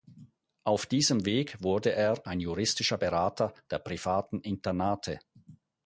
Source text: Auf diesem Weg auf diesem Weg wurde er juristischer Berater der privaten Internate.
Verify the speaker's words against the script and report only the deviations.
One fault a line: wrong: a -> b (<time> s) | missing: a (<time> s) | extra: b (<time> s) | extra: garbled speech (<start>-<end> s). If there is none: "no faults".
missing: auf diesem Weg (1.6 s)
extra: ein (2.2 s)